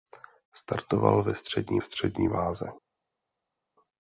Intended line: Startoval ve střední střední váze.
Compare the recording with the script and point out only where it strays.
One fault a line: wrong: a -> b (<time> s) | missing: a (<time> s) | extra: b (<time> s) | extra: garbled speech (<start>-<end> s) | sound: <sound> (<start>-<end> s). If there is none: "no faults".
no faults